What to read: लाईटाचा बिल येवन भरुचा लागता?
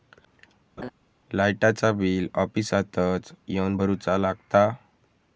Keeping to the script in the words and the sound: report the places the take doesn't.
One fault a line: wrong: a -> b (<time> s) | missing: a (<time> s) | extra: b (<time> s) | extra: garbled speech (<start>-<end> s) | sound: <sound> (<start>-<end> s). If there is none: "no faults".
sound: laugh (0.8-0.9 s)
extra: ऑफिसातच (2.3 s)